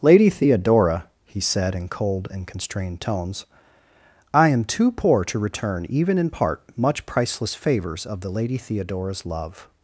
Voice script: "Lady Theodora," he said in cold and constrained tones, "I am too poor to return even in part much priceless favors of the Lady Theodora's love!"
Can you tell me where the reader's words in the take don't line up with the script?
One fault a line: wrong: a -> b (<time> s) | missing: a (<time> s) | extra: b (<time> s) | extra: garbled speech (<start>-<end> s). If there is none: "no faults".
no faults